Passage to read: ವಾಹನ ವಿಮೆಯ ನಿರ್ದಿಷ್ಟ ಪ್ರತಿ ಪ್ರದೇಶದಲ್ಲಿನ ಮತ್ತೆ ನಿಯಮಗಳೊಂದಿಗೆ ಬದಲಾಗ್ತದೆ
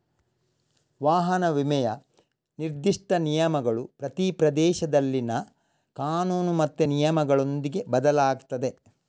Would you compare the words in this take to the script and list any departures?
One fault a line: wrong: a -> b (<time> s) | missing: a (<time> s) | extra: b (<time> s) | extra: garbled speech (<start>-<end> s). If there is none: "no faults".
extra: ನಿಯಮಗಳು (3.1 s)
extra: ಕಾನೂನು (6.0 s)